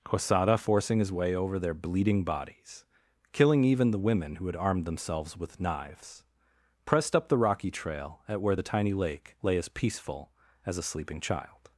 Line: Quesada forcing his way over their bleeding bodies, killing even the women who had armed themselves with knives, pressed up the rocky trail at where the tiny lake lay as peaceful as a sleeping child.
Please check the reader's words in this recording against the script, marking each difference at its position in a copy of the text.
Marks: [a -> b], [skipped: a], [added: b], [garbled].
Quesada forcing his way over their bleeding bodies, killing even the women who had armed themselves with knives, pressed up the rocky trail at where the tiny lake lay as peaceful as a sleeping child.